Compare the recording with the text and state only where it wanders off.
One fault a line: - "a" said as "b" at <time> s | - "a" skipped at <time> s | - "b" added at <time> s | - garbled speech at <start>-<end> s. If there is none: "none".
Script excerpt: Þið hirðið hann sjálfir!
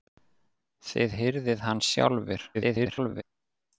- garbled speech at 2.5-3.2 s